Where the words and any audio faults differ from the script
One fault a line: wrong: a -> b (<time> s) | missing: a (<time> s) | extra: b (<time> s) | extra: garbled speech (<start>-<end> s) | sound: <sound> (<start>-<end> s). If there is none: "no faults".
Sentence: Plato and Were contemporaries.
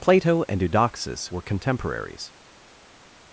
extra: Eudoxus (0.6 s)